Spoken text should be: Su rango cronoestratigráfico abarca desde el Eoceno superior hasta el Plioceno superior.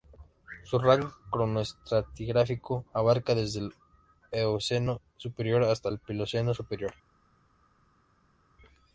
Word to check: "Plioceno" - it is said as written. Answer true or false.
true